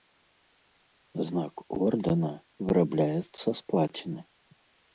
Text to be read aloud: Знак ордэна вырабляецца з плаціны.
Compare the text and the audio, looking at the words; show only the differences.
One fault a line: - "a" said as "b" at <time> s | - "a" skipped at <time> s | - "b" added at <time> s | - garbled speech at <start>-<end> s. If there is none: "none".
none